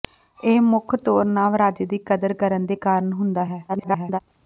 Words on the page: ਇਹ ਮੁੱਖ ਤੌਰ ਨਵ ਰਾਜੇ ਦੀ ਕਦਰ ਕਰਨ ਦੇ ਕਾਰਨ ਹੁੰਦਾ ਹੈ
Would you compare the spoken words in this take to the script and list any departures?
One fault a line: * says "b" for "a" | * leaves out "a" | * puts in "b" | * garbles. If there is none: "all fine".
* garbles